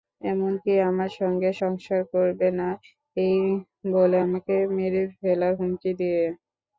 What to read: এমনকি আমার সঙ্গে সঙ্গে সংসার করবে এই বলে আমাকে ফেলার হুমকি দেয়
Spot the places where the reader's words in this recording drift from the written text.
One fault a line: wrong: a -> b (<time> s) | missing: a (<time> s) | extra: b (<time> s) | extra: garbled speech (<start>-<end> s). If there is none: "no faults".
missing: সঙ্গে (1.5 s)
extra: না (2.6 s)
extra: মেরে (4.8 s)